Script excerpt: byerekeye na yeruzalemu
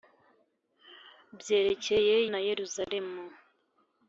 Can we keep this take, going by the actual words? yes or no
yes